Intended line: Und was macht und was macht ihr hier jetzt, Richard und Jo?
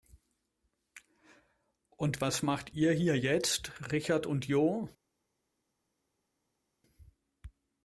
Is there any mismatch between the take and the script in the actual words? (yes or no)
yes